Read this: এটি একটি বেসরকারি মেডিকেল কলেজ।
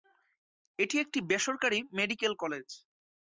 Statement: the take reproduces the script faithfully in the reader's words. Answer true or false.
true